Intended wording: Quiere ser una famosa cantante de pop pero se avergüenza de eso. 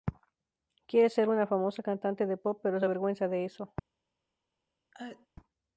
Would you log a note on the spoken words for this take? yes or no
no